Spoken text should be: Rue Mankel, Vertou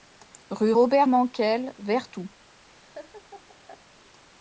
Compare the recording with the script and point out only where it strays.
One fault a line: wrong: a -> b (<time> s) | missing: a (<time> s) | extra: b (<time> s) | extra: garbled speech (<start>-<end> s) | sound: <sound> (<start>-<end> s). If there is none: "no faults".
extra: Robert (0.7 s)
sound: laugh (2.7-3.8 s)